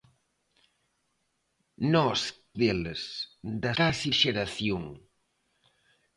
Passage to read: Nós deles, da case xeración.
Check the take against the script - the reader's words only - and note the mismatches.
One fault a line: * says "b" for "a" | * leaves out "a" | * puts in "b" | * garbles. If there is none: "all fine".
all fine